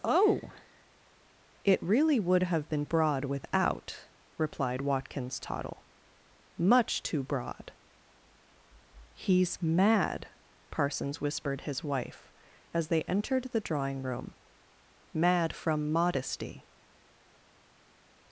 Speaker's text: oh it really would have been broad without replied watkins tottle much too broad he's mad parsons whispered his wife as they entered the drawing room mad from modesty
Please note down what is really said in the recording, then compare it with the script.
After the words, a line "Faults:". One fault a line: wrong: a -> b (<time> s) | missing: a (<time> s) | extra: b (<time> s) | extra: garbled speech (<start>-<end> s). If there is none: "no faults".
oh it really would have been broad without replied watkins tottle much too broad he's mad parsons whispered his wife as they entered the drawing room mad from modesty
Faults:
no faults